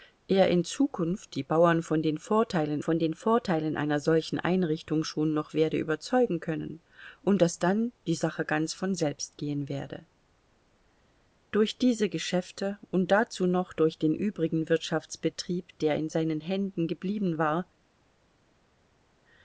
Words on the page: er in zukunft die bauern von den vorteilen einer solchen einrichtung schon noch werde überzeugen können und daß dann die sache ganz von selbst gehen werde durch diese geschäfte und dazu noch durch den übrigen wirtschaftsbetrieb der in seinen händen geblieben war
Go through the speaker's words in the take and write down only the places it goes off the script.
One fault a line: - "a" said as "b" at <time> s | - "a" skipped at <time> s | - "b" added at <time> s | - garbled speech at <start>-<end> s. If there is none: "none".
- "von den vorteilen" added at 2.8 s